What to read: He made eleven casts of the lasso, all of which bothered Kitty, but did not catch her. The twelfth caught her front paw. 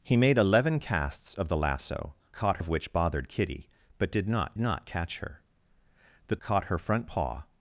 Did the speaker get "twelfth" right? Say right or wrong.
wrong